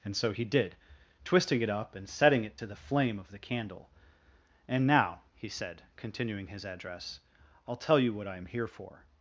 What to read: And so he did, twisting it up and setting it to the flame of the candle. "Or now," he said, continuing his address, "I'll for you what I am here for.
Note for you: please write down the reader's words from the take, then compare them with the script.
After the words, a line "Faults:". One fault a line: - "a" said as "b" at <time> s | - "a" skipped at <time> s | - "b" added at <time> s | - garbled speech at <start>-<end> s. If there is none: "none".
And so he did, twisting it up and setting it to the flame of the candle. "And now," he said, continuing his address, "I'll tell you what I am here for.
Faults:
- "Or" said as "And" at 4.7 s
- "for" said as "tell" at 7.8 s